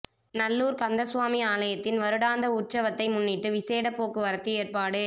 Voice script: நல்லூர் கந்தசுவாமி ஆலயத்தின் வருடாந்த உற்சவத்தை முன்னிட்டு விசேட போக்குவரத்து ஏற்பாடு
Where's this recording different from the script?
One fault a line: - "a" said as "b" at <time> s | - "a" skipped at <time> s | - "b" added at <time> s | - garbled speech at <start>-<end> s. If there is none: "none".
none